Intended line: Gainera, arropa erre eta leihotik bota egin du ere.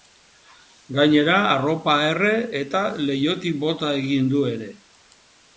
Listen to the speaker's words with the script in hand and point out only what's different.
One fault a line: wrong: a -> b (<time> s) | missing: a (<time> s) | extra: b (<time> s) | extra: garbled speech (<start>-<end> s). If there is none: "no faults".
no faults